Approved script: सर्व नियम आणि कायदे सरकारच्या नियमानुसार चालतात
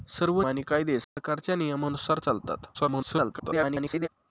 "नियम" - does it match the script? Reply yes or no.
no